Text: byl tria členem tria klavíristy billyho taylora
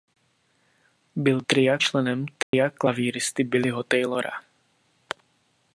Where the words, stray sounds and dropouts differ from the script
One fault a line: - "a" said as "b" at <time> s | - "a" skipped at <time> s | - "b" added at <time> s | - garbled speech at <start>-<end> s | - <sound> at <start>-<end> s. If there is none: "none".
- dropout at 2.4-2.5 s